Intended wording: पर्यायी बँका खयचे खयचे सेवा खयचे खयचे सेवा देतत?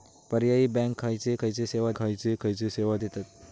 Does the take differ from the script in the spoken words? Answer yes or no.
no